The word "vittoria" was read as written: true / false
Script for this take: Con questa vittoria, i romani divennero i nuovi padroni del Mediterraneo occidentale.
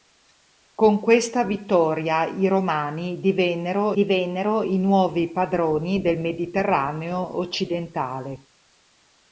true